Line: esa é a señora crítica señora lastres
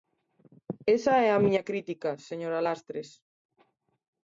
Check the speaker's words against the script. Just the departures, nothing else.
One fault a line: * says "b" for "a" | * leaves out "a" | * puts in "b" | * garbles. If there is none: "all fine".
* says "miña" for "señora"